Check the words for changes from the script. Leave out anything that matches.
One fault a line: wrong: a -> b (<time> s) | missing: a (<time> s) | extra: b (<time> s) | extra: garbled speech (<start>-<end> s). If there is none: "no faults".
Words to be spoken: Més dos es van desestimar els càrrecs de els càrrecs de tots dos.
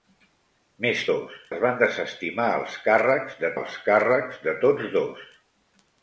no faults